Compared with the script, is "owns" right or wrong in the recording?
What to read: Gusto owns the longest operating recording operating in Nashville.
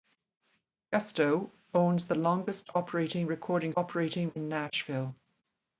right